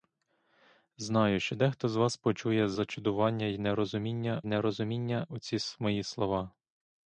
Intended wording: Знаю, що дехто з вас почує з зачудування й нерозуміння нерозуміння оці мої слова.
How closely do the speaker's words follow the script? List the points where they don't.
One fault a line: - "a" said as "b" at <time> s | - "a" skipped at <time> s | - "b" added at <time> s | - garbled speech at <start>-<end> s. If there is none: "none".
none